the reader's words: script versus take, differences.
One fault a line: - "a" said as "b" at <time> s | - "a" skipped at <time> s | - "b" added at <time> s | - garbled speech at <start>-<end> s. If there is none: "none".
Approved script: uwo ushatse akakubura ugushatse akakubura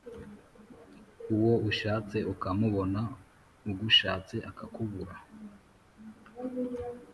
- "akakubura" said as "ukamubona" at 2.3 s